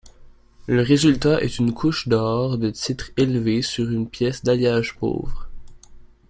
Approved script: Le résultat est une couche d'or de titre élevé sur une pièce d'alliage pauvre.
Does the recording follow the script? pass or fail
pass